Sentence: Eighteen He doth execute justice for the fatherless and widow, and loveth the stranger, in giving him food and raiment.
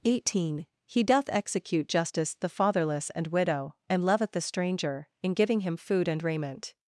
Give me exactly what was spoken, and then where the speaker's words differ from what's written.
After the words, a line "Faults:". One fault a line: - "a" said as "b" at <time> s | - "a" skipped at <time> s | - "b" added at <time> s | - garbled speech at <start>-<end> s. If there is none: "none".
Eighteen He doth execute justice the fatherless and widow, and loveth the stranger, in giving him food and raiment.
Faults:
- "for" skipped at 2.3 s